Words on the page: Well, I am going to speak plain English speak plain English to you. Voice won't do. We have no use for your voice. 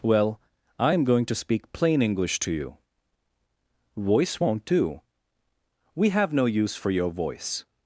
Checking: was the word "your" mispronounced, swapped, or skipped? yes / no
no